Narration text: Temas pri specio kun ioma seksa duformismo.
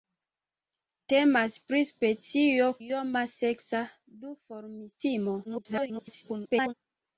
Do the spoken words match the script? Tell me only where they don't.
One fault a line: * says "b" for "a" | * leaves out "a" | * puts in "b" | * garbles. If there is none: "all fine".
* leaves out "kun"
* garbles